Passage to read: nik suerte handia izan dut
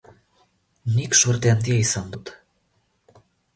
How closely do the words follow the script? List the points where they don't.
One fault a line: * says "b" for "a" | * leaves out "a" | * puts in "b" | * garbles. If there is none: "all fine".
all fine